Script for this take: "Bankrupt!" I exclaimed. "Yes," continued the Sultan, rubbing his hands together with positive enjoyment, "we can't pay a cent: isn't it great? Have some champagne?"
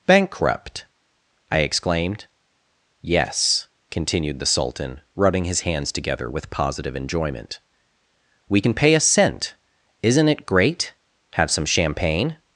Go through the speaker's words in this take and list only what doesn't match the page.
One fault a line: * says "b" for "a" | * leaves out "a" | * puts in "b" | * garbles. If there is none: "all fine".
* says "can" for "can't"